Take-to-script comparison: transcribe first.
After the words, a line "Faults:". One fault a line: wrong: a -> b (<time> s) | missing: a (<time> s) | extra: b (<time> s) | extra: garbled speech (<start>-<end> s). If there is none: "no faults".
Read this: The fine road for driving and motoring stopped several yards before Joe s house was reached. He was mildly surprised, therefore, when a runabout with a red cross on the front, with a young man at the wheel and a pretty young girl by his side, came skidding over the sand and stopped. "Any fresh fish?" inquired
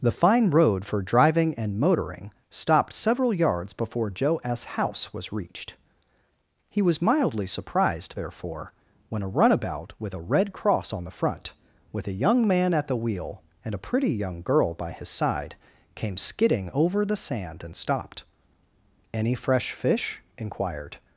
The fine road for driving and motoring stopped several yards before Joe s house was reached. He was mildly surprised, therefore, when a runabout with a red cross on the front, with a young man at the wheel and a pretty young girl by his side, came skidding over the sand and stopped. "Any fresh fish?" inquired
Faults:
no faults